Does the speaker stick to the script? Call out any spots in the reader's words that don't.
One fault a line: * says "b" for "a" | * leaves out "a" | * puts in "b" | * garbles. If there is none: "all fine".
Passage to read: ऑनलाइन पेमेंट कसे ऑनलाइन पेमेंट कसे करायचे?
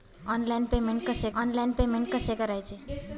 all fine